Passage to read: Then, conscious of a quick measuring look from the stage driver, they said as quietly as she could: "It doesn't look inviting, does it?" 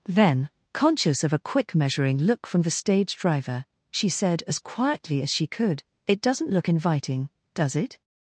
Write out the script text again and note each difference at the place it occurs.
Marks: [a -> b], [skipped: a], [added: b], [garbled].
Then, conscious of a quick measuring look from the stage driver, [they -> she] said as quietly as she could: "It doesn't look inviting, does it?"